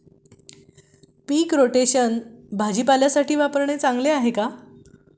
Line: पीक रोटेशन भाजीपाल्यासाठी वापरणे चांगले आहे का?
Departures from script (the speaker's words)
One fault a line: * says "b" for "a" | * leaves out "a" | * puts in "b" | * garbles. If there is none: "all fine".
all fine